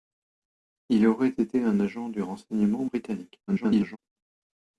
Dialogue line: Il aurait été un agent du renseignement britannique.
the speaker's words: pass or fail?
fail